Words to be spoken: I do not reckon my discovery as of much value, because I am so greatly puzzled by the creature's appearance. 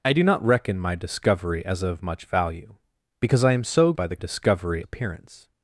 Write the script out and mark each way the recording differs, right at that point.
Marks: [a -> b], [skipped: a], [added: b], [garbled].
I do not reckon my discovery as of much value, because I am so [skipped: greatly puzzled] by the [creature's -> discovery] appearance.